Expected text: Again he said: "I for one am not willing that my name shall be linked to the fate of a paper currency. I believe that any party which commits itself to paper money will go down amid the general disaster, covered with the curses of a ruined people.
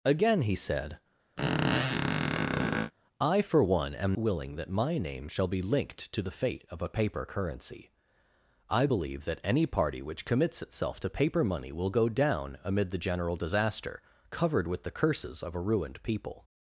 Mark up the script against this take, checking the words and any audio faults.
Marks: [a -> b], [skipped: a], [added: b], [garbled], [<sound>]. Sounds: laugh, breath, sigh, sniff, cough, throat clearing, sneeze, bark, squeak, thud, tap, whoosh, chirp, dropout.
Again he said: [squeak] "I for one am [skipped: not] willing that my name shall be linked to the fate of a paper currency. I believe that any party which commits itself to paper money will go down amid the general disaster, covered with the curses of a ruined people.